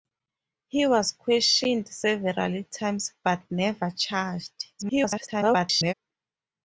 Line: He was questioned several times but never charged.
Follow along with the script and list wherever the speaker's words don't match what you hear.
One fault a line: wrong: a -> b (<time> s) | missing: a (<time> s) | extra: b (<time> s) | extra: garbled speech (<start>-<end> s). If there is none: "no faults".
extra: garbled speech (4.8-5.9 s)